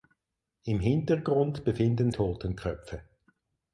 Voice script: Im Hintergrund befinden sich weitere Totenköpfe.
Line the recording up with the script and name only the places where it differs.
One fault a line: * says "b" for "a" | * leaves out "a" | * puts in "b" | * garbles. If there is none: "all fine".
* leaves out "sich weitere"